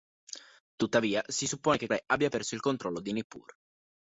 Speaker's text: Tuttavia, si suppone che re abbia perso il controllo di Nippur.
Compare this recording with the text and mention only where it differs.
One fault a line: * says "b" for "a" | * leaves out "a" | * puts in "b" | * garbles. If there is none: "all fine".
all fine